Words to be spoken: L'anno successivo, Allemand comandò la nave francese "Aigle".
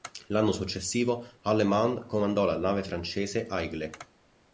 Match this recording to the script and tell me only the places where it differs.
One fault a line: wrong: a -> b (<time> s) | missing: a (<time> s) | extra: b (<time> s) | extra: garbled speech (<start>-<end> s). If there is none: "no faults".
no faults